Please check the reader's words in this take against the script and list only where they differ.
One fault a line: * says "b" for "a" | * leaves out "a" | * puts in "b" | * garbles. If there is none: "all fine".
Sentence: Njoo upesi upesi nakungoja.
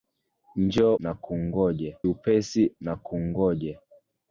* says "nakungoja" for "upesi"